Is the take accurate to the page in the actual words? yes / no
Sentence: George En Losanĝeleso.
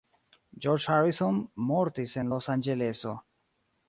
no